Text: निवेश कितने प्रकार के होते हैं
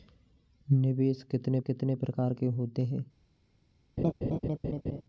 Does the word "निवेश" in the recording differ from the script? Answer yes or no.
no